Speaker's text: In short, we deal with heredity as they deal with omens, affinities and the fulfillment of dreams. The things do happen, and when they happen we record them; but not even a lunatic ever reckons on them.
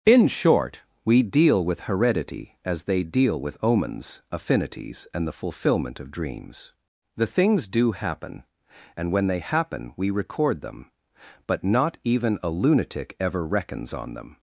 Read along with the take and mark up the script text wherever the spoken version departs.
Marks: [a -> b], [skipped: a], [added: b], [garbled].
In short, we deal with heredity as they deal with omens, affinities and the fulfillment of dreams. The things do happen, and when they happen we record them; but not even a lunatic ever reckons on them.